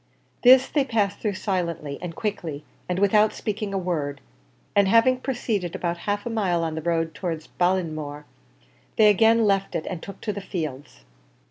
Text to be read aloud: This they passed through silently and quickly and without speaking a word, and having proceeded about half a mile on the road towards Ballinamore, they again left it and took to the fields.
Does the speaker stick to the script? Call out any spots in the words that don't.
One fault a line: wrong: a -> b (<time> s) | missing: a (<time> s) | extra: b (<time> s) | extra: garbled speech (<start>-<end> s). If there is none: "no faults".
no faults